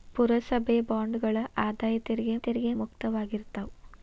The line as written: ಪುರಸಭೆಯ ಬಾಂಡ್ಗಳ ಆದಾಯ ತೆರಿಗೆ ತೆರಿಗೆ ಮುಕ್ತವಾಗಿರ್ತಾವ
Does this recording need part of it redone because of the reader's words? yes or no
no